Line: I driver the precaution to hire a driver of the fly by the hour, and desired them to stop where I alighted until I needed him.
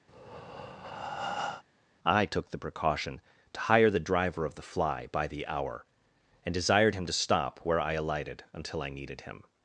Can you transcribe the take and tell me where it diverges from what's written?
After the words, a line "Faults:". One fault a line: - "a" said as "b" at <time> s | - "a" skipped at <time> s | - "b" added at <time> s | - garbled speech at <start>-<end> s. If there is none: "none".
I took the precaution to hire the driver of the fly by the hour, and desired him to stop where I alighted until I needed him.
Faults:
- "driver" said as "took" at 2.3 s
- "a" said as "the" at 3.9 s
- "them" said as "him" at 6.9 s